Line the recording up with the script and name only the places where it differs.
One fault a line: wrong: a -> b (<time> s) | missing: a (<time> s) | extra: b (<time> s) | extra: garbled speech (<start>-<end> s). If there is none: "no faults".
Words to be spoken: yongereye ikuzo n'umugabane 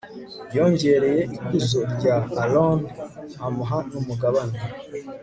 extra: rya aroni amuha (1.9 s)